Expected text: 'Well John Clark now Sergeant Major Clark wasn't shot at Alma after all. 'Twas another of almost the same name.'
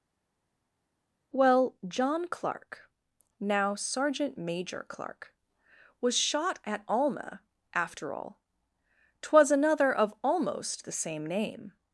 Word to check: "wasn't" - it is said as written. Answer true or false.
false